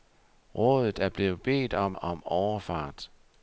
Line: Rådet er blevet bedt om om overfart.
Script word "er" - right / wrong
right